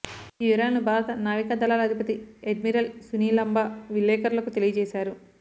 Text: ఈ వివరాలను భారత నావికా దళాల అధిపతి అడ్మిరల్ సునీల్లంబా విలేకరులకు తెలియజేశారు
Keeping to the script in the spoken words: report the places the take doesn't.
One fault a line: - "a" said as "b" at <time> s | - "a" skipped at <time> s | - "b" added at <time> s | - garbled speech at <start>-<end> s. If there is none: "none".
none